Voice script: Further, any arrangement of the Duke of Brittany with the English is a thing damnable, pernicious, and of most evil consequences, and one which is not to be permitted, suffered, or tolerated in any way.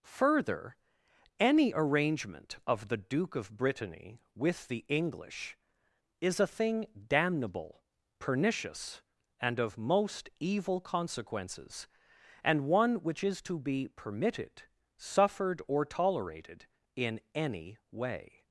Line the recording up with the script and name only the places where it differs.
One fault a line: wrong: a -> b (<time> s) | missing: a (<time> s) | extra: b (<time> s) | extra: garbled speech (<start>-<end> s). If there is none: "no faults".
missing: not (13.4 s)